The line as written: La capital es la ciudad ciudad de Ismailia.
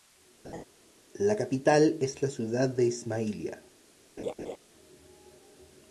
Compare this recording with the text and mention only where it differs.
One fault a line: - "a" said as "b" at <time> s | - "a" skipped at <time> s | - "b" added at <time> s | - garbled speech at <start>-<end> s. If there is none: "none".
- "ciudad" skipped at 2.7 s